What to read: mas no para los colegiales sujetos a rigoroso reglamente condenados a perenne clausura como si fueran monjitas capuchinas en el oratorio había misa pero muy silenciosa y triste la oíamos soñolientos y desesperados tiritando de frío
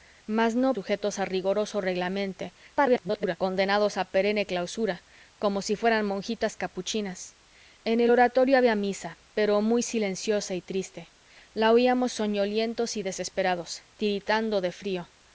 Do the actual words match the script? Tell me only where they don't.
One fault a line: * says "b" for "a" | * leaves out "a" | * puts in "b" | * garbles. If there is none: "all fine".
* leaves out "para los colegiales"
* garbles